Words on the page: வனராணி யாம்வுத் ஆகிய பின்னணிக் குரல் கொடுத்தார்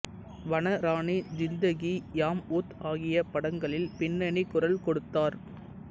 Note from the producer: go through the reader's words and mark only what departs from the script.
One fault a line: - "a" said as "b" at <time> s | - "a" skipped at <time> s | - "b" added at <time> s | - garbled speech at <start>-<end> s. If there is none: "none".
- "ஜிந்தகி" added at 1.3 s
- "படங்களில்" added at 3.3 s